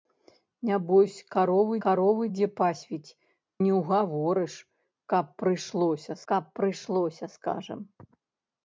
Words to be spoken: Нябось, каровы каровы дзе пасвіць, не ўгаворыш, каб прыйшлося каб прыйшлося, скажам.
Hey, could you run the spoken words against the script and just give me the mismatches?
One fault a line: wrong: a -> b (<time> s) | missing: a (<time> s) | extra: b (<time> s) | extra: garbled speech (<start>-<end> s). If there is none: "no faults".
no faults